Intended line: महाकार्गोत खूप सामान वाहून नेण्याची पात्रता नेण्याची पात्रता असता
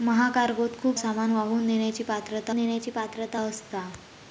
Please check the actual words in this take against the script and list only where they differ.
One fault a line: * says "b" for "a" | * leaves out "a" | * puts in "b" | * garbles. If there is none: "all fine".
all fine